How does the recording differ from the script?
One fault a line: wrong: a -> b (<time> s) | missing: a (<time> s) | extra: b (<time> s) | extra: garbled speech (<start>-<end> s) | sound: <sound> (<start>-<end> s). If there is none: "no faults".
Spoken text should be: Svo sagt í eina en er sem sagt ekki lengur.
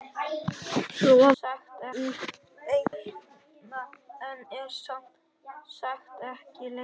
sound: dropout (2.9-2.9 s)